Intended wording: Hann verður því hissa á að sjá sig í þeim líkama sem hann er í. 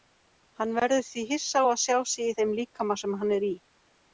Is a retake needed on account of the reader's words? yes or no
no